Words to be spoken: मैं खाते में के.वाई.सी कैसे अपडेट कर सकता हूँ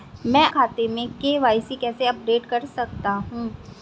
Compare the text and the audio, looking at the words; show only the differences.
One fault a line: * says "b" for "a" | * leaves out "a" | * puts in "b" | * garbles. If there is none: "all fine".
all fine